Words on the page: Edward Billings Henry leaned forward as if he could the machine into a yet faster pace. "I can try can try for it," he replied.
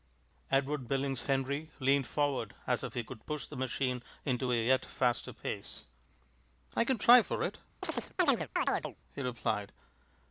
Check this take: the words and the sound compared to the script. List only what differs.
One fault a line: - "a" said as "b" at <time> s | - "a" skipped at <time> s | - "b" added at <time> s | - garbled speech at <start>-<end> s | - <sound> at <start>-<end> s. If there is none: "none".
- "push" added at 3.3 s
- "can try" skipped at 7.2 s
- chirp at 7.8-9.0 s